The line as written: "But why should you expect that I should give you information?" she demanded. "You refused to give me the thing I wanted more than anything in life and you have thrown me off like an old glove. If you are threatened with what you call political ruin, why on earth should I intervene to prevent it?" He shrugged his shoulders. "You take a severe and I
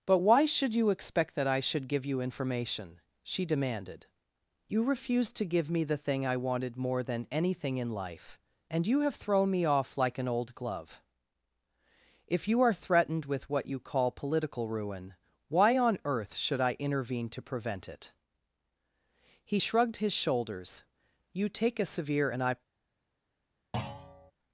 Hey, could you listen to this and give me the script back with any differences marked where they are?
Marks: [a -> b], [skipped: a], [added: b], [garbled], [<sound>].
"But why should you expect that I should give you information?" she demanded. "You refused to give me the thing I wanted more than anything in life and you have thrown me off like an old glove. If you are threatened with what you call political ruin, why on earth should I intervene to prevent it?" He shrugged his shoulders. "You take a severe and I [thud]